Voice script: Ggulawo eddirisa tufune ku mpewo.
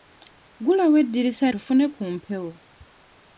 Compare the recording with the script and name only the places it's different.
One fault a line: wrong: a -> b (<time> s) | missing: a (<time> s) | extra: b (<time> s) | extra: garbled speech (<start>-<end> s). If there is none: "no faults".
no faults